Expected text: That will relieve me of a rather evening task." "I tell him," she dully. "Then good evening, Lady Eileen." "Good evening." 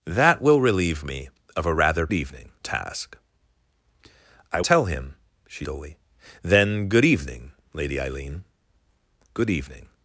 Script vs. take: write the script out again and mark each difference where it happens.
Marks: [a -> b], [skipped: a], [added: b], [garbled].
That will relieve me of a rather evening task." "I tell him," she dully. "Then good evening, Lady Eileen." "Good evening."